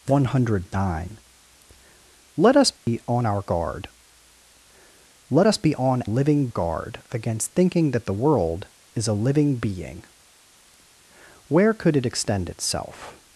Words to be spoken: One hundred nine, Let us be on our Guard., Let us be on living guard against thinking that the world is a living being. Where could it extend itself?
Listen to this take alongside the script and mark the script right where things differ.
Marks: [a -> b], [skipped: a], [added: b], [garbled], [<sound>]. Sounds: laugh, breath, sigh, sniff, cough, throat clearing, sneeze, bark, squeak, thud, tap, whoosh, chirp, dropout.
One hundred nine, Let us be [dropout] on our Guard., Let us be on living guard against thinking that the world is a living being. Where could it extend itself?